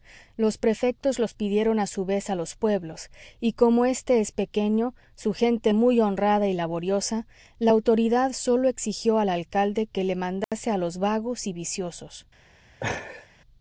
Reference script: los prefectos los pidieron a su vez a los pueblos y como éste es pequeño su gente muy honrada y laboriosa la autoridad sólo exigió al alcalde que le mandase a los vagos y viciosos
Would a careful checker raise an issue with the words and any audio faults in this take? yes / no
yes